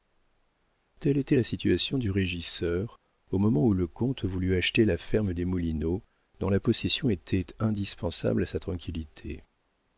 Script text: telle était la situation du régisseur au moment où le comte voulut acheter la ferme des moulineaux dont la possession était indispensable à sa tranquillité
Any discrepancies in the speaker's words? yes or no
no